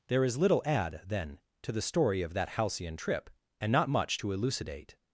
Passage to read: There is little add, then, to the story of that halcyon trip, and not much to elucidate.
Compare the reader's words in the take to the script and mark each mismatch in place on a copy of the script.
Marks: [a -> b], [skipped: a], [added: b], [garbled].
There is little add, then, to the story of that halcyon trip, and not much to elucidate.